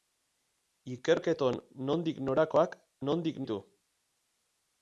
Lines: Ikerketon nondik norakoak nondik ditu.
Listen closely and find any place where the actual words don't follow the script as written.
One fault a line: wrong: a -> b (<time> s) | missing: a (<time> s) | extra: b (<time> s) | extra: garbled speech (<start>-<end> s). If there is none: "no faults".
no faults